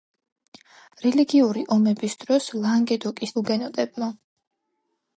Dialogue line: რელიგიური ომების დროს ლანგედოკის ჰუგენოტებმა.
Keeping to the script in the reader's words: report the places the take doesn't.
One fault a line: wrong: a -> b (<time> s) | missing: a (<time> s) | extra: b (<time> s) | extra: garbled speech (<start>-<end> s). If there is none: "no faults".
no faults